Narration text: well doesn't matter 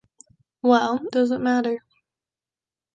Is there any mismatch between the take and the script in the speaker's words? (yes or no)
no